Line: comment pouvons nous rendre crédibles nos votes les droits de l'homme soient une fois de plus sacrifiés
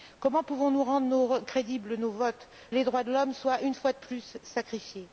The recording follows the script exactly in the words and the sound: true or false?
true